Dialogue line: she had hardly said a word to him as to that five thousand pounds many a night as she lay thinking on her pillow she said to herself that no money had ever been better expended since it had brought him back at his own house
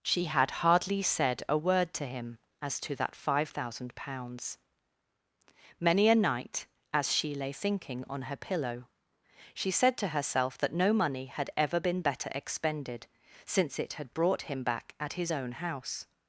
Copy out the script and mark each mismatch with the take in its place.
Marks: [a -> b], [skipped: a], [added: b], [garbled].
she had hardly said a word to him as to that five thousand pounds many a night as she lay thinking on her pillow she said to herself that no money had ever been better expended since it had brought him back at his own house